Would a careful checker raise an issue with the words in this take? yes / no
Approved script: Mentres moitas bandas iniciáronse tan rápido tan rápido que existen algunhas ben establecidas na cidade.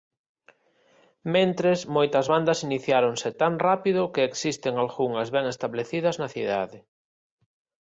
yes